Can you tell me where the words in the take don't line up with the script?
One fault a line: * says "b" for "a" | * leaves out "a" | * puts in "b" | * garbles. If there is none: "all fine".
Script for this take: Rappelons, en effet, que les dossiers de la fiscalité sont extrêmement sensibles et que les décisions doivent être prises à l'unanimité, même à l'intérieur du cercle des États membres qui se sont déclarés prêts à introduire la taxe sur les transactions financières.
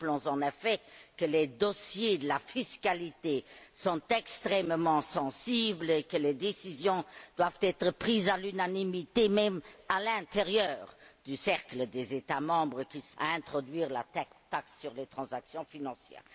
* leaves out "sont déclarés prêts"